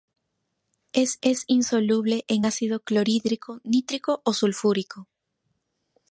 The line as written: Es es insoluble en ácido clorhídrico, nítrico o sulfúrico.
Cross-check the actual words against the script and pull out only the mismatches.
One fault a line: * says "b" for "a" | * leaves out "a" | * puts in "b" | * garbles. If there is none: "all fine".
all fine